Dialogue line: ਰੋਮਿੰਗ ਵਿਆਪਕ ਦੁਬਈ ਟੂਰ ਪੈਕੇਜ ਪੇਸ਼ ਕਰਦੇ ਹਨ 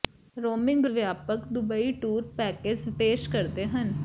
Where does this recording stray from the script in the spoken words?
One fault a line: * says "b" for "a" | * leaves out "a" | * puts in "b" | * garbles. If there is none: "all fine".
all fine